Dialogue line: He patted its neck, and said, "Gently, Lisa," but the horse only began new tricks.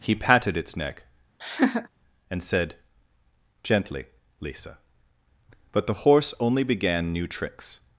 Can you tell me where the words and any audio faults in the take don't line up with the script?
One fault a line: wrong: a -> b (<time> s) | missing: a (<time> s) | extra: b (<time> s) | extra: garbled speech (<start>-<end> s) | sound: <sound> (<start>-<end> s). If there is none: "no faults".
sound: laugh (1.4-1.9 s)